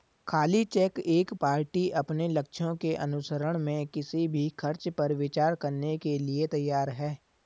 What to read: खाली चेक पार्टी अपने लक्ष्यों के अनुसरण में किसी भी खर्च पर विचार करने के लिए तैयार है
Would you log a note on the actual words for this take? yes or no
yes